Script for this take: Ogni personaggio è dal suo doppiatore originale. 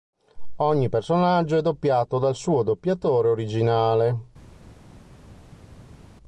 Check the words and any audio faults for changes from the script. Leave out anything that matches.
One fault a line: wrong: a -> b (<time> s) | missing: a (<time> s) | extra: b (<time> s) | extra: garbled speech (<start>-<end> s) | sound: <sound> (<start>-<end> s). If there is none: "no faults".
extra: doppiato (1.6 s)